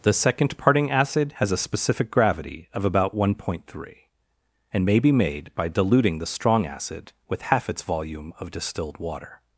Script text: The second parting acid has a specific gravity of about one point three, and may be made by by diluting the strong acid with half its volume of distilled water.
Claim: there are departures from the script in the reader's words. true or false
true